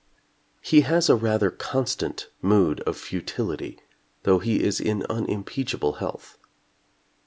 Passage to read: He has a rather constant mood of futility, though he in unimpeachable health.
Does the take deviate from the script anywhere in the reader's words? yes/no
yes